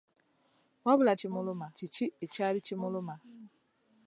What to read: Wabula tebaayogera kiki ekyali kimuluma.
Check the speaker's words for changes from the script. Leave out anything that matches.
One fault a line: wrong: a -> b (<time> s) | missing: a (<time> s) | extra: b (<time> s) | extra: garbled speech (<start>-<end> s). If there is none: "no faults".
wrong: tebaayogera -> kimuluma (1.2 s)